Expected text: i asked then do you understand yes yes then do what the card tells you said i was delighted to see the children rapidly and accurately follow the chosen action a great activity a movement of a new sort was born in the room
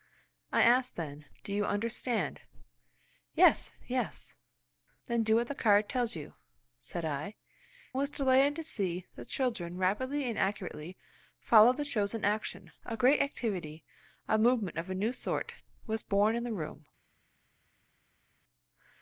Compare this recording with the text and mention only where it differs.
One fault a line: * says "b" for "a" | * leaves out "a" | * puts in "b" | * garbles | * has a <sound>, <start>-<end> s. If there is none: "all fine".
all fine